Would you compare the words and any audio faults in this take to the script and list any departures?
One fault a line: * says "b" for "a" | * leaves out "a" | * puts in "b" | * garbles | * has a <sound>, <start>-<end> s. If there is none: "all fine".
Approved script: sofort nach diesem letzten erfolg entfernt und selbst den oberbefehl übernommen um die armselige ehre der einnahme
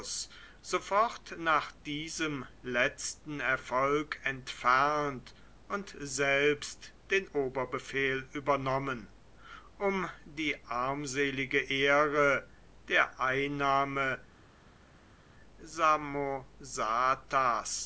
all fine